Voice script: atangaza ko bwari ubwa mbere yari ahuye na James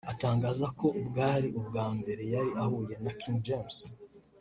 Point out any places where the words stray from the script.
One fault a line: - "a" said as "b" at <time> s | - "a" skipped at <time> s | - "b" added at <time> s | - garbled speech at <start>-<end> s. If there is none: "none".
- "King" added at 3.2 s